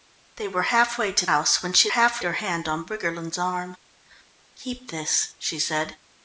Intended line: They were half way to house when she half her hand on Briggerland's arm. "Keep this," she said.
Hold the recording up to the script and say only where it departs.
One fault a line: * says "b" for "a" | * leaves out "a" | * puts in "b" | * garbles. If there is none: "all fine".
all fine